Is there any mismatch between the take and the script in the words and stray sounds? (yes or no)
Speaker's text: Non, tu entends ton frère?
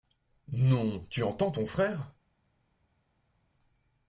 no